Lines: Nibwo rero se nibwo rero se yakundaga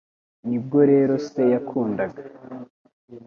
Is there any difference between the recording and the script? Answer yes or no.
yes